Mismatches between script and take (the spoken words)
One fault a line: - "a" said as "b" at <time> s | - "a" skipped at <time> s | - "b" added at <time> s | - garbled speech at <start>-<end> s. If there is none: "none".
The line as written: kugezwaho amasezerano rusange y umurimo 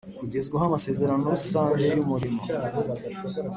none